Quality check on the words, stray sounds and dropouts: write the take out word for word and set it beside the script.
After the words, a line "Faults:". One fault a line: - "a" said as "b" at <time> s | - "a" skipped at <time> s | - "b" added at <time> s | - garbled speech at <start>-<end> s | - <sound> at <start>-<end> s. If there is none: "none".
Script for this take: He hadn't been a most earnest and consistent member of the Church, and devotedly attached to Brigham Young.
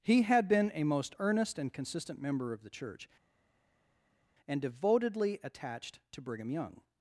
He had been a most earnest and consistent member of the Church, and devotedly attached to Brigham Young.
Faults:
- "hadn't" said as "had" at 0.2 s